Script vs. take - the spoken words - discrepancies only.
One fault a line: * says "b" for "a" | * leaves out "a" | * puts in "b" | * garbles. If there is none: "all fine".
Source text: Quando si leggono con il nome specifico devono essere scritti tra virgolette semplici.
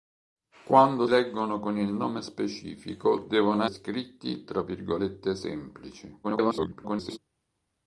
* leaves out "si"
* leaves out "essere"
* garbles